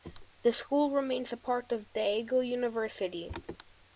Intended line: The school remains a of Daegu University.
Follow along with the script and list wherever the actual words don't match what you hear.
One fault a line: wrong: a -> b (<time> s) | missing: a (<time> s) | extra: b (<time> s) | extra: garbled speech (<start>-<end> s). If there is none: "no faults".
extra: part (1.4 s)